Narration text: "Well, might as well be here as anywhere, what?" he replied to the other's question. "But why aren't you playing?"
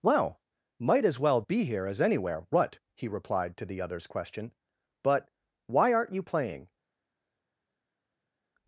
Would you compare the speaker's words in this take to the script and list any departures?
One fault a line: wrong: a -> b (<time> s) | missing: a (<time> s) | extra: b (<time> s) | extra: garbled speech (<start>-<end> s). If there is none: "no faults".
no faults